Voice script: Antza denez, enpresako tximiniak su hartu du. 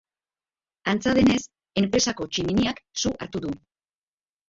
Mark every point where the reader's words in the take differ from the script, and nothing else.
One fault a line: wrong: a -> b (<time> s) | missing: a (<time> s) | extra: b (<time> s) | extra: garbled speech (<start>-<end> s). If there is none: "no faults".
no faults